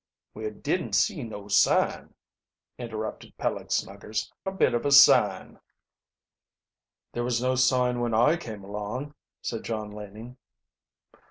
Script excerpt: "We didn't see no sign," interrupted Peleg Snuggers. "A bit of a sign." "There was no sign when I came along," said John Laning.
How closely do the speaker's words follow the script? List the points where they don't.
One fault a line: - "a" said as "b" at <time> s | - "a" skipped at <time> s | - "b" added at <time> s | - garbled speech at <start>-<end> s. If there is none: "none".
none